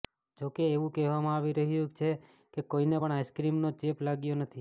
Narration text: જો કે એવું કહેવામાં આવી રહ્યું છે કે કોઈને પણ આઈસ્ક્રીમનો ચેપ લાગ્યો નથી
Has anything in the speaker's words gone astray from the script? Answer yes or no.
no